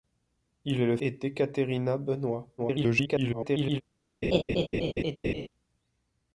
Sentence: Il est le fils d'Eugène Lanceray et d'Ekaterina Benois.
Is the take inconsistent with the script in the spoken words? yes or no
yes